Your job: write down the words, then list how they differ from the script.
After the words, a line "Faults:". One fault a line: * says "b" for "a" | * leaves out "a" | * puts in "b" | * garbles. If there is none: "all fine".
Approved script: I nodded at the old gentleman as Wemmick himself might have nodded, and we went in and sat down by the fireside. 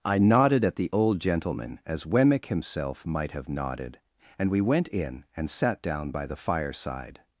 I nodded at the old gentleman as Wemmick himself might have nodded, and we went in and sat down by the fireside.
Faults:
all fine